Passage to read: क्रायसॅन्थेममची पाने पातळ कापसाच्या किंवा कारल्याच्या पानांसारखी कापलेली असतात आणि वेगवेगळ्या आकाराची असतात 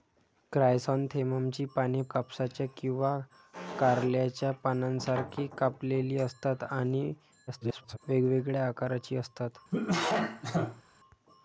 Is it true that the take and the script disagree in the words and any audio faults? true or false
true